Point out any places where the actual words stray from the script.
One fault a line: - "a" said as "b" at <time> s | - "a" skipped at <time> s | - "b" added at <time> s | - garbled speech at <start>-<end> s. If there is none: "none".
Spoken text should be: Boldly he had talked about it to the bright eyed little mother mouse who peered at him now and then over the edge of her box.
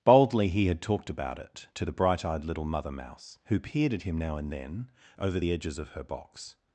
- "edge" said as "edges" at 5.5 s